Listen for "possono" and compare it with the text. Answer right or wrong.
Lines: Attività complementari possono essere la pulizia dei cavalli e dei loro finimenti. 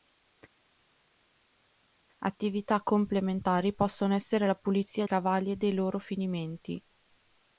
right